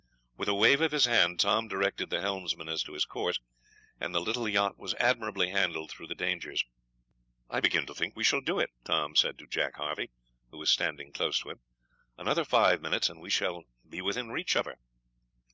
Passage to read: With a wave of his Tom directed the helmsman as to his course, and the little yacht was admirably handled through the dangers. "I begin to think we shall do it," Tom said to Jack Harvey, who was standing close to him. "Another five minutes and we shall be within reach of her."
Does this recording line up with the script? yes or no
no